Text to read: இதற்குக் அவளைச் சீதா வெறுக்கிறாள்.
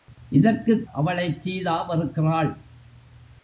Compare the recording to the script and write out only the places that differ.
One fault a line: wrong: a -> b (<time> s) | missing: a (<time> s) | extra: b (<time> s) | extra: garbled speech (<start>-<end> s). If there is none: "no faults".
no faults